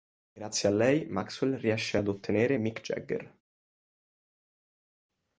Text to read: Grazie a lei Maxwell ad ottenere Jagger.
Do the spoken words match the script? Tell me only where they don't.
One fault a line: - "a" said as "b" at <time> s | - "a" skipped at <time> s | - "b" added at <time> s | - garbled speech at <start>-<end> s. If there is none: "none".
- "riesce" added at 1.6 s
- "Mick" added at 2.5 s